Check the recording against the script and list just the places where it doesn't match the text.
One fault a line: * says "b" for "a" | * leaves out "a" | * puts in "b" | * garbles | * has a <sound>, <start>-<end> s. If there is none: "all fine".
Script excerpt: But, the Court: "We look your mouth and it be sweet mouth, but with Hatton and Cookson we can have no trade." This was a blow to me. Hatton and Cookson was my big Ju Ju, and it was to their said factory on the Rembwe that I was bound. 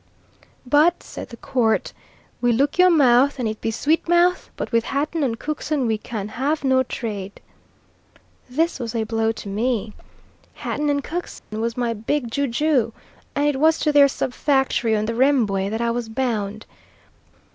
* puts in "said"
* has a dropout, 11.4-11.5 s
* says "sub" for "said"